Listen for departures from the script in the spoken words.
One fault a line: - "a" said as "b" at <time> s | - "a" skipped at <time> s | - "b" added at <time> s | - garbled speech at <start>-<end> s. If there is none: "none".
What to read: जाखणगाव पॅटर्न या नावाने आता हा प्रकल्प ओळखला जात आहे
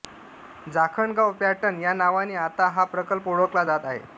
none